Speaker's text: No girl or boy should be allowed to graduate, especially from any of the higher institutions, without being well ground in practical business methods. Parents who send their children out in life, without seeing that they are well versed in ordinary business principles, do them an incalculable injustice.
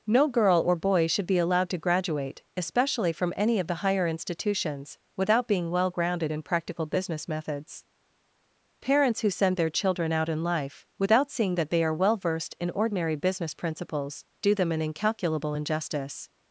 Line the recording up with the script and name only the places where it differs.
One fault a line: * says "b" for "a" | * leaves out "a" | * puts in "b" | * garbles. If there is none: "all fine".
* says "grounded" for "ground"